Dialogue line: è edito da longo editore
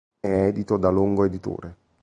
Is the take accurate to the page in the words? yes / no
yes